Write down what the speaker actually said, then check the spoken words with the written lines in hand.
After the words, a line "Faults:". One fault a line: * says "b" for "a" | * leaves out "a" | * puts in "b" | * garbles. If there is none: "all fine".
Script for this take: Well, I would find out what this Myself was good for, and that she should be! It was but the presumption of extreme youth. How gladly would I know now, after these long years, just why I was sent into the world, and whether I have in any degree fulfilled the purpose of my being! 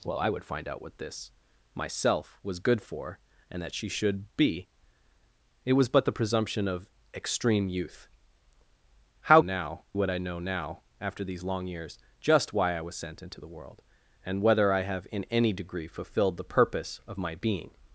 Well, I would find out what this Myself was good for, and that she should be! It was but the presumption of extreme youth. How now would I know now, after these long years, just why I was sent into the world, and whether I have in any degree fulfilled the purpose of my being!
Faults:
* says "now" for "gladly"